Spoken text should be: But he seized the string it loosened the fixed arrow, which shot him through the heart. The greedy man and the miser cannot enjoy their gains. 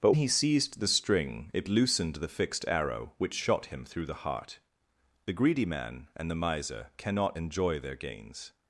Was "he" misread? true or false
false